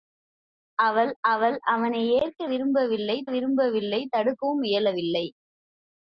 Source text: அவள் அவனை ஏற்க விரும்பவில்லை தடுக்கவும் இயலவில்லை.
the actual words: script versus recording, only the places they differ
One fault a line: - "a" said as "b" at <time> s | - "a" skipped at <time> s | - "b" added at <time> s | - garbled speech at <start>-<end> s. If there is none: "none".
- "அவள்" added at 1.2 s
- "விரும்பவில்லை" added at 3.3 s